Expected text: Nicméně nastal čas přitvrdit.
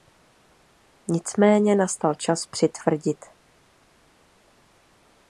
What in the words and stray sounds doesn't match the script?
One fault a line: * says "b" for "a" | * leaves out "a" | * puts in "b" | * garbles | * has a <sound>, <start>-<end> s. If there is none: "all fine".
all fine